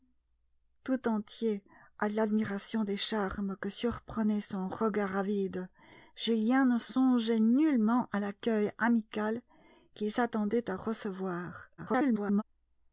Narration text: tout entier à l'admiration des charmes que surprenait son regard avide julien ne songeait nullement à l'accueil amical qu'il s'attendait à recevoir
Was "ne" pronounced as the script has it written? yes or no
yes